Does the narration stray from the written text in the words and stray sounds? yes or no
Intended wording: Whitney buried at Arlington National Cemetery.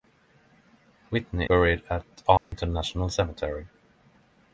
yes